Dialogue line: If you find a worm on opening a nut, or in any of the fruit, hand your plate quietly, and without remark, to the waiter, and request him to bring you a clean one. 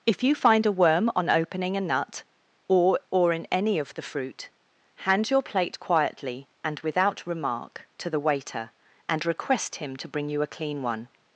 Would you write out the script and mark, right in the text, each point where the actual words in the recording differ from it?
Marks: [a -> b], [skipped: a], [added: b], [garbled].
If you find a worm on opening a nut, or [added: or] in any of the fruit, hand your plate quietly, and without remark, to the waiter, and request him to bring you a clean one.